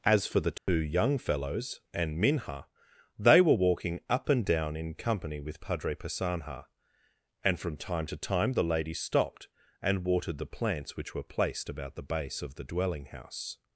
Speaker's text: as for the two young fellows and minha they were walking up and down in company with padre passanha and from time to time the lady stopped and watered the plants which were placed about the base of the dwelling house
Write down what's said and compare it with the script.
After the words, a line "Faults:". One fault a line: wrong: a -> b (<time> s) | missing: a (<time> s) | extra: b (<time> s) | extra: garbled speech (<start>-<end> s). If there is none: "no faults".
as for the two young fellows and minha they were walking up and down in company with padre passanha and from time to time the lady stopped and watered the plants which were placed about the base of the dwelling house
Faults:
no faults